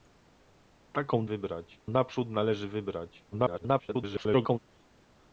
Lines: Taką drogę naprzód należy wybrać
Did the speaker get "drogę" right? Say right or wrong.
wrong